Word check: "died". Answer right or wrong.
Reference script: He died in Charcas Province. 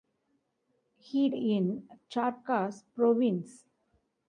wrong